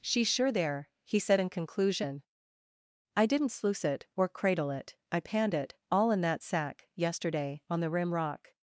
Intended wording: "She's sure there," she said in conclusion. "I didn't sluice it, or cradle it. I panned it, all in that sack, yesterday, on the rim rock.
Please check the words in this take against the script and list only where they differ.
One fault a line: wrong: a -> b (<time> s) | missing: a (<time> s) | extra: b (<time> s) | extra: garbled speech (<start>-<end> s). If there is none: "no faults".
wrong: she -> he (1.0 s)